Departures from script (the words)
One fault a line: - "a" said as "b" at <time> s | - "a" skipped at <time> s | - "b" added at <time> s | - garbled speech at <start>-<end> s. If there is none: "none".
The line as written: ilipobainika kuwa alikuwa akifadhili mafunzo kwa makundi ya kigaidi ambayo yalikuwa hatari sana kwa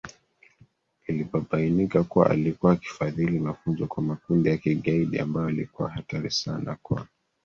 none